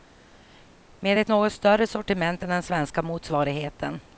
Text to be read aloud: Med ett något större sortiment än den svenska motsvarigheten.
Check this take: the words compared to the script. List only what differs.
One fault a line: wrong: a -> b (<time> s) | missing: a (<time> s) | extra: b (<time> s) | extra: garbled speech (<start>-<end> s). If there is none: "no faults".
no faults